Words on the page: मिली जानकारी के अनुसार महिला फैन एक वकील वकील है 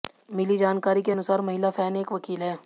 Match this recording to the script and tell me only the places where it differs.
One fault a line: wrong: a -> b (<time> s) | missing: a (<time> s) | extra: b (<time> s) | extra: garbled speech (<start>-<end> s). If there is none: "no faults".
missing: वकील (2.4 s)